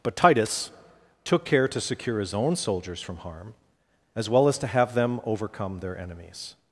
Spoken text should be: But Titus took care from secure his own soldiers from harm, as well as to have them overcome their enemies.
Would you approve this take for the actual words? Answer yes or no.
no